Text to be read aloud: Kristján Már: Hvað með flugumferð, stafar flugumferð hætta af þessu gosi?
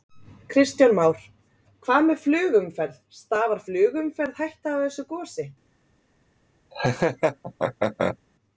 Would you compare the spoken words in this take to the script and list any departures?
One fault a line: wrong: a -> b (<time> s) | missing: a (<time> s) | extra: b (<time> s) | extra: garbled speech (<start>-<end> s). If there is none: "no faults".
no faults